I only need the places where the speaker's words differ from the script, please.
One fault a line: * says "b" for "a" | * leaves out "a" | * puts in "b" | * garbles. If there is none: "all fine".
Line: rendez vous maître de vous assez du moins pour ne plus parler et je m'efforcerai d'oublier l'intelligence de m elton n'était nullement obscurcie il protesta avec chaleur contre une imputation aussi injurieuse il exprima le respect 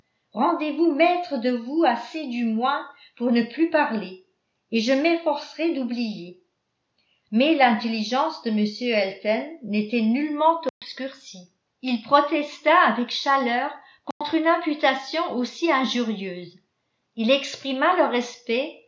* puts in "mais"